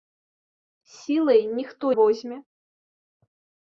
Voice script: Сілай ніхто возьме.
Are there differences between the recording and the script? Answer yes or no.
no